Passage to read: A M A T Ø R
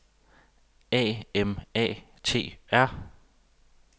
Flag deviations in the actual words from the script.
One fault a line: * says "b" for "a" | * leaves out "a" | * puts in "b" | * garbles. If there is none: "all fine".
* leaves out "Ø"